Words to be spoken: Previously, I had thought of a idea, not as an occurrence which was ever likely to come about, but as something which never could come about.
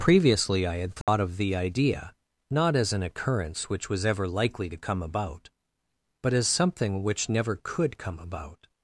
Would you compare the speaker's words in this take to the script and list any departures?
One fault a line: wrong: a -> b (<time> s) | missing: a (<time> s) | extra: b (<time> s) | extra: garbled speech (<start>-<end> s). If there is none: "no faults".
wrong: a -> the (1.4 s)